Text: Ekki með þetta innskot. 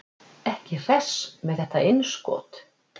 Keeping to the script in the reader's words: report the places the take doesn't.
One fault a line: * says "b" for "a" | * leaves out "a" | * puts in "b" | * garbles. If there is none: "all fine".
* puts in "hress"